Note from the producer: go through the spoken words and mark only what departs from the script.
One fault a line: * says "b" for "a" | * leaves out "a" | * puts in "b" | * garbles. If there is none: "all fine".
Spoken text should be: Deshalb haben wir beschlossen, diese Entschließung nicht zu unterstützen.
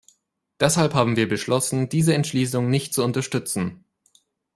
all fine